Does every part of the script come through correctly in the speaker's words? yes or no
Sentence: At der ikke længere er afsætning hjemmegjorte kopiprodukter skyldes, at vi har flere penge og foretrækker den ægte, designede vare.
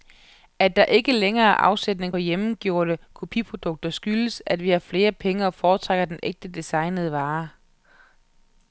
yes